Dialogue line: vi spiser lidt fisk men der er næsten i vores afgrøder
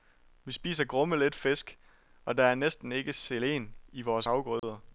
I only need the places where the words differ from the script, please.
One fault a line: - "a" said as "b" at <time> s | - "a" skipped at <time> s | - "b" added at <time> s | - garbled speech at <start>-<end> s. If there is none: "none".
- "grumme" added at 0.8 s
- "men" said as "og" at 2.2 s
- "ikke selen" added at 2.9 s